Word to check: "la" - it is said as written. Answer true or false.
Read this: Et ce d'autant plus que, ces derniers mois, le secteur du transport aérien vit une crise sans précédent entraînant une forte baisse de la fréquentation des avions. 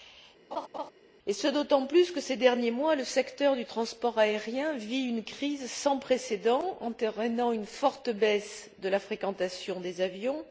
true